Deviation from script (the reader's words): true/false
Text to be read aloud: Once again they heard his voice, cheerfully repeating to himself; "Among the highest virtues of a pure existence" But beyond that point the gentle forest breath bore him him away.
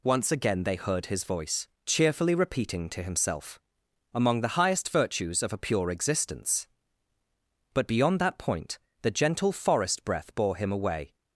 true